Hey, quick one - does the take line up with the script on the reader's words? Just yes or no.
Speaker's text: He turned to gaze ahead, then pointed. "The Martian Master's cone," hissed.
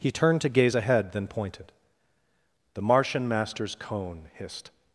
yes